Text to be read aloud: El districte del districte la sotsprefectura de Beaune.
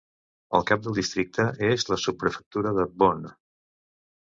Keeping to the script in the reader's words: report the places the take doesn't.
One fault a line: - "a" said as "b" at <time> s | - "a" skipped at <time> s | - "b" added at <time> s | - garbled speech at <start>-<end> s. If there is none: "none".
- "districte" said as "cap" at 0.7 s
- "és" added at 1.7 s